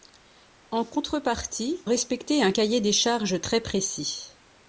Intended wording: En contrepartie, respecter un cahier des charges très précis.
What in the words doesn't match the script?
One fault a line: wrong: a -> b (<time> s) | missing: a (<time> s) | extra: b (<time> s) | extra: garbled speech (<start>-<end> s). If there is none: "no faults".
no faults